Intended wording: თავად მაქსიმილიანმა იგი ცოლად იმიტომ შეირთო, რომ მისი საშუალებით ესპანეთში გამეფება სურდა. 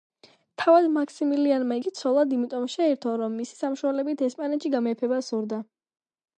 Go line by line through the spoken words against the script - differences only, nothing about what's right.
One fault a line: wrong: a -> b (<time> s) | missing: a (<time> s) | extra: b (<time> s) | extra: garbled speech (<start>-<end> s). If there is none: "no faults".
no faults